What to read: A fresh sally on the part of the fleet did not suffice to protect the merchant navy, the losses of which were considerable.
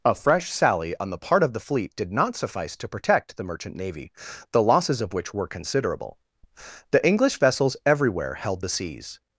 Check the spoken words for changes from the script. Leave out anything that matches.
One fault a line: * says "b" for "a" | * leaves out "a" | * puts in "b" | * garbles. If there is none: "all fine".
* puts in "The English vessels everywhere held the seas"